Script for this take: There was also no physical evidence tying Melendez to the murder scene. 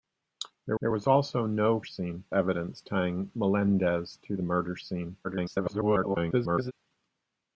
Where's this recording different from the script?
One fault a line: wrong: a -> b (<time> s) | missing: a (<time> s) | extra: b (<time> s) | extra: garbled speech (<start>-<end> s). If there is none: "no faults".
extra: there (0.8 s)
wrong: physical -> scene (1.8 s)
extra: garbled speech (5.2-6.7 s)